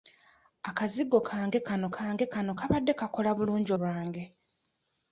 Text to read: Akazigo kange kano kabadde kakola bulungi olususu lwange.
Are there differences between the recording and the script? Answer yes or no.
yes